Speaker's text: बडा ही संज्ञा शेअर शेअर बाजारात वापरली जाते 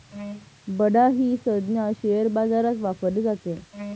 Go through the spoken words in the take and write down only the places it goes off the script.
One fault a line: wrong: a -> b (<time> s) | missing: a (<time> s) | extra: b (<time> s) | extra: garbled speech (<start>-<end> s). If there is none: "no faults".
missing: शेअर (2.3 s)